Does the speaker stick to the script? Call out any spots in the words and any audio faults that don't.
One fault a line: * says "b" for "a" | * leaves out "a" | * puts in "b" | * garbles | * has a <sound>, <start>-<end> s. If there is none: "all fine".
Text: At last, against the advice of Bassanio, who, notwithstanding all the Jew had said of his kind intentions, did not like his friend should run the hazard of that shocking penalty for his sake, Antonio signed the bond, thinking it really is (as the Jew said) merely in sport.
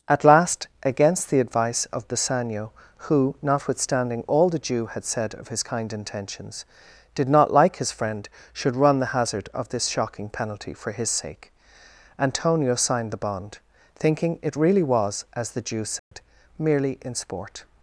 * says "this" for "that"
* says "was" for "is"
* has a dropout, 16.0-16.1 s